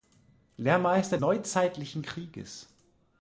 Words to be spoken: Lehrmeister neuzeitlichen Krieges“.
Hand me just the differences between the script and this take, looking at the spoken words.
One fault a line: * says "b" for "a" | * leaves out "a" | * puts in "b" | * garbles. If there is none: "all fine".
all fine